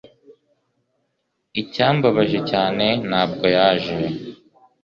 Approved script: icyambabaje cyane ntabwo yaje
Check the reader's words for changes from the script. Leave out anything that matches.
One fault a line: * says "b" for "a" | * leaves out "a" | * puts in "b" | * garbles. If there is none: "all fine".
all fine